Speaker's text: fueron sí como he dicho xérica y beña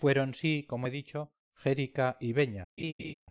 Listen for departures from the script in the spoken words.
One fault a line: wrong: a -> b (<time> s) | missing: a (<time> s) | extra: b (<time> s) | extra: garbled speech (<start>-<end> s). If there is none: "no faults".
no faults